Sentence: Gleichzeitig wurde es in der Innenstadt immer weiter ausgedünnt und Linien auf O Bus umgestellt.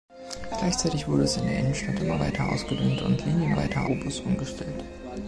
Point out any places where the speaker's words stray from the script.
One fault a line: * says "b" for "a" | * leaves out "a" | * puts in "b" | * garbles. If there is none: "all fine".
* says "weiter" for "auf"